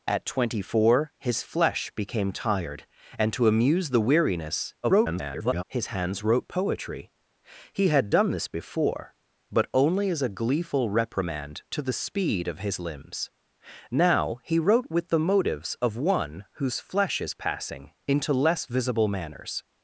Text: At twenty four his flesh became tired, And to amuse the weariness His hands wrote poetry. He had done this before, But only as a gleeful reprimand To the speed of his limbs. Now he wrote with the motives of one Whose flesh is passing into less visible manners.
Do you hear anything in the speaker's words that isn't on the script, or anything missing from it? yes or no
yes